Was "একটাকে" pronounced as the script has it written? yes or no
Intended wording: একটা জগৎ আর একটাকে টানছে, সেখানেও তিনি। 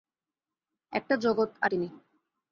no